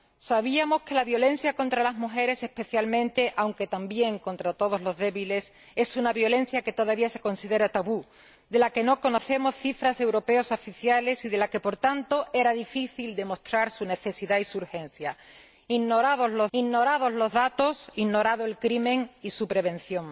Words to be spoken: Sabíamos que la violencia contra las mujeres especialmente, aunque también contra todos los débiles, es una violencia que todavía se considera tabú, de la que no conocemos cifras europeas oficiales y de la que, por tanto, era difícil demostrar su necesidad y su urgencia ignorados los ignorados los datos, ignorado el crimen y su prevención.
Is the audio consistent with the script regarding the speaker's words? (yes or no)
yes